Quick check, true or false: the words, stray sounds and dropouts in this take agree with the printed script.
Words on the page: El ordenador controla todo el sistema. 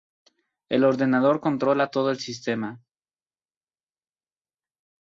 true